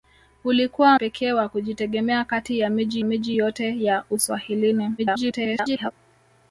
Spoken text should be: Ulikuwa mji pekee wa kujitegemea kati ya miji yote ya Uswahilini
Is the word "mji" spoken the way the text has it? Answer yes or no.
no